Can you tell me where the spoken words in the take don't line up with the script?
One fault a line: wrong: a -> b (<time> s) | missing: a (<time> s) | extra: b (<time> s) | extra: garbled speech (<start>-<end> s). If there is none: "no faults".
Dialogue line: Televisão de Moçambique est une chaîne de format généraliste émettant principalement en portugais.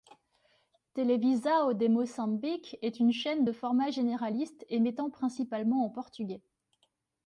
no faults